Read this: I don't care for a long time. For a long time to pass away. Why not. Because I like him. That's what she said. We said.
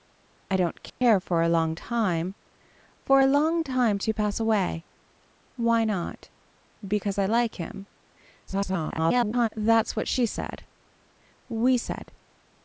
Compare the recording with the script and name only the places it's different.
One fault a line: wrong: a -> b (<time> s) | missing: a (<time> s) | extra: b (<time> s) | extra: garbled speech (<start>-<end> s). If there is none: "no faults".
extra: garbled speech (8.5-9.5 s)